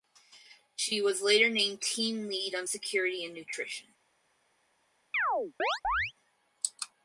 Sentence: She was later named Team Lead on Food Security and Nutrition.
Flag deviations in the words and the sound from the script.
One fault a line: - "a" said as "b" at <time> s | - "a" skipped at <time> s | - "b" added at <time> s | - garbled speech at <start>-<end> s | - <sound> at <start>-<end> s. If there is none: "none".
- "Food" skipped at 2.7 s
- chirp at 5.1-6.1 s